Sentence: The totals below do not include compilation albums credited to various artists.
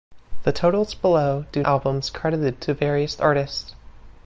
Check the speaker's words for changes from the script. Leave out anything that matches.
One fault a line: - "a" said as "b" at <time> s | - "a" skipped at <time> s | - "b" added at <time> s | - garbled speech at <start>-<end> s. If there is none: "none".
- "not include compilation" skipped at 1.6 s